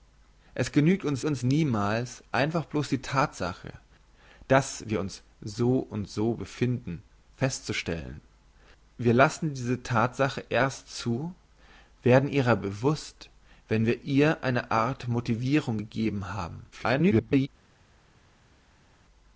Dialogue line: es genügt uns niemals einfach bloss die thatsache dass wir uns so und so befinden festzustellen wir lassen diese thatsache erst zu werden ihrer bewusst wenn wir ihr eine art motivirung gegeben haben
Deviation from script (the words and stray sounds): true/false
true